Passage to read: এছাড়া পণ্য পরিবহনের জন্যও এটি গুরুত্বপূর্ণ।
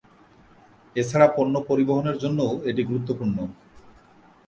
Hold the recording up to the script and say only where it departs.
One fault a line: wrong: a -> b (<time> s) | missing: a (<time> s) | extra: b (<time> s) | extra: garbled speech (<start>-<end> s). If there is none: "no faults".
no faults